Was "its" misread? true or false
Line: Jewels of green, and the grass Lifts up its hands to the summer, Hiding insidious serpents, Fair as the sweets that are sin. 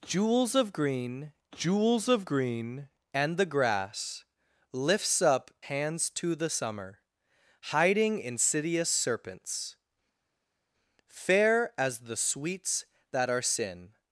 true